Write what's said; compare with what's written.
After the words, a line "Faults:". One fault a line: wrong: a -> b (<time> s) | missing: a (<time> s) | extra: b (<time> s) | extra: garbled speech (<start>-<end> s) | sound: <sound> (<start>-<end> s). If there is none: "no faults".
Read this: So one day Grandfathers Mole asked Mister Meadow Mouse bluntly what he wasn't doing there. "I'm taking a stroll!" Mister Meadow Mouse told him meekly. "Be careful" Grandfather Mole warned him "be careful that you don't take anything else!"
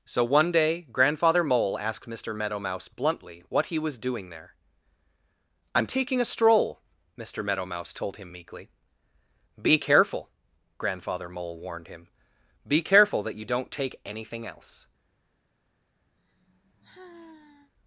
So one day Grandfather Mole asked Mister Meadow Mouse bluntly what he was doing there. "I'm taking a stroll!" Mister Meadow Mouse told him meekly. "Be careful" Grandfather Mole warned him "be careful that you don't take anything else!"
Faults:
wrong: Grandfathers -> Grandfather (0.9 s)
wrong: wasn't -> was (3.8 s)
sound: sigh (16.2-17.7 s)